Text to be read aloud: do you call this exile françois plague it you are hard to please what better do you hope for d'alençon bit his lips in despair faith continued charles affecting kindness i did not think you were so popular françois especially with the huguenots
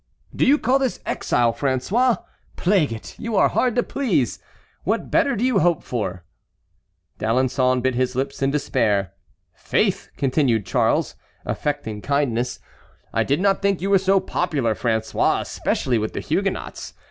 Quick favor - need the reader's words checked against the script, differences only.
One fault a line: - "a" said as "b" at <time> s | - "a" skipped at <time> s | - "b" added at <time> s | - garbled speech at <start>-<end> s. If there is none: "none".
none